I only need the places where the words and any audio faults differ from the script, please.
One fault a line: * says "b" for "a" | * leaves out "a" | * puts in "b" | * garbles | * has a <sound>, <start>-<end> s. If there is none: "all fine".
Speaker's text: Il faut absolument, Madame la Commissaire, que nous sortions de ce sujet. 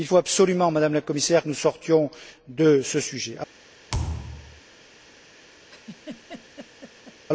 * has a thud, 3.9-4.6 s
* has a laugh, 5.7-7.2 s